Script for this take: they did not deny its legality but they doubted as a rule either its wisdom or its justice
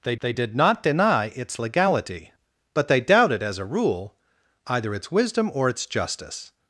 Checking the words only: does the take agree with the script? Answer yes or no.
no